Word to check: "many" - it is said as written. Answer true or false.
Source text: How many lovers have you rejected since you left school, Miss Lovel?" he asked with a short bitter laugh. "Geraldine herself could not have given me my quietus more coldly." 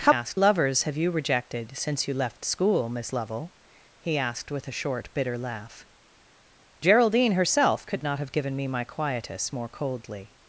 false